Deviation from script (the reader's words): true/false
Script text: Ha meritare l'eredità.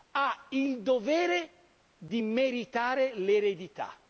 true